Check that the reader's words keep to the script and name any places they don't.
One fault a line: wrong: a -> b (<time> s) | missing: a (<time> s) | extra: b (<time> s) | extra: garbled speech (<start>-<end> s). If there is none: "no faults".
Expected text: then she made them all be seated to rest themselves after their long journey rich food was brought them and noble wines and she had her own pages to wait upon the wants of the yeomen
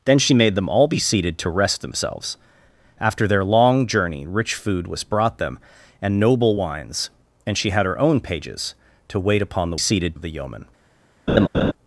wrong: wants -> seated (9.8 s)